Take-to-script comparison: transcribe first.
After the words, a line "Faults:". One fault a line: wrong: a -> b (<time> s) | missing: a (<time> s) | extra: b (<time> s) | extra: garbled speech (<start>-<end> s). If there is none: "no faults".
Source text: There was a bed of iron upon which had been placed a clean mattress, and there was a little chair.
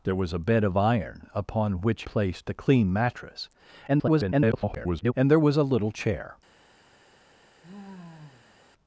There was a bed of iron upon which placed a clean mattress, [garbled] and there was a little chair.
Faults:
missing: had been (2.0 s)
extra: garbled speech (3.9-5.1 s)